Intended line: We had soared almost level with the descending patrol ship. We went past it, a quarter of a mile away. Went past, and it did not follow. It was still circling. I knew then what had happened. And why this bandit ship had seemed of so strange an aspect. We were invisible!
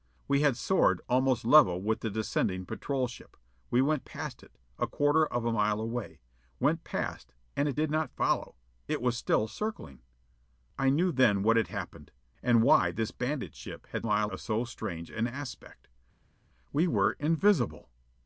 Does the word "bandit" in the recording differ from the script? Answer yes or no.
no